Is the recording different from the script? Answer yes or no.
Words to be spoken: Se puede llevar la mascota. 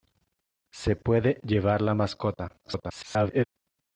yes